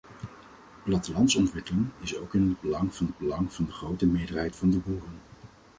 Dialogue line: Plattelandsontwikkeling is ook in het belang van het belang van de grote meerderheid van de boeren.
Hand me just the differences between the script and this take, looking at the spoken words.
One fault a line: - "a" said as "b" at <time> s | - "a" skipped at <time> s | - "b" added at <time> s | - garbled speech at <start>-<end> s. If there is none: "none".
none